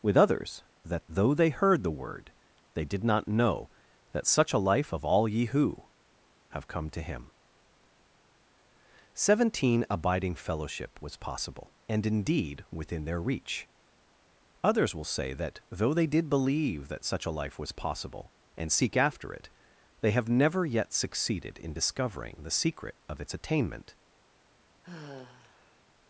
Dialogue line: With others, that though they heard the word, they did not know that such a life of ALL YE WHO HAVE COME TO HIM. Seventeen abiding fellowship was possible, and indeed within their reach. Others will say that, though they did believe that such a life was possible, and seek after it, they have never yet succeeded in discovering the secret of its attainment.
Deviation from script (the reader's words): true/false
false